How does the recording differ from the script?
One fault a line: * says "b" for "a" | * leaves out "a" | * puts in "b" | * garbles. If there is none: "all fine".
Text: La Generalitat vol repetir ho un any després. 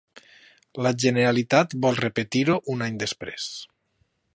all fine